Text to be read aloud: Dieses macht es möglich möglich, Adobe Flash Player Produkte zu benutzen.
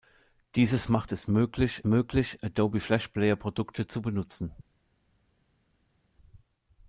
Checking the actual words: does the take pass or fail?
pass